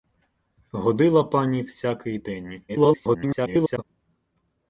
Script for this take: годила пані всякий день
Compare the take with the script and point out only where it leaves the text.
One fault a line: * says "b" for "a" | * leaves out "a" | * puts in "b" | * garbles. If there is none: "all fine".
* garbles